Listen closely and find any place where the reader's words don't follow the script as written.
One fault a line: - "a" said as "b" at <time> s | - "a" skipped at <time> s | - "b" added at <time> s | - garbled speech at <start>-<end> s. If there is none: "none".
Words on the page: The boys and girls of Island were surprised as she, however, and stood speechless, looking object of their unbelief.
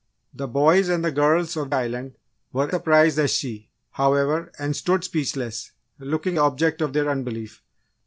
none